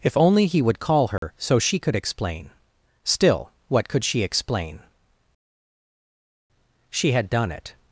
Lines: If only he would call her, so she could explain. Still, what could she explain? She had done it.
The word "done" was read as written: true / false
true